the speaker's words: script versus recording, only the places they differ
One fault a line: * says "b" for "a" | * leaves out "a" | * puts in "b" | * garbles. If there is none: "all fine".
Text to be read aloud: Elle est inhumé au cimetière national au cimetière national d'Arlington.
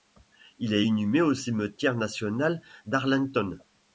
* says "Il" for "Elle"
* leaves out "au cimetière national"